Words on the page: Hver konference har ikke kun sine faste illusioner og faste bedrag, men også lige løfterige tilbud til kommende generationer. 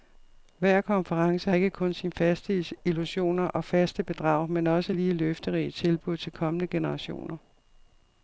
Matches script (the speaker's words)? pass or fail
fail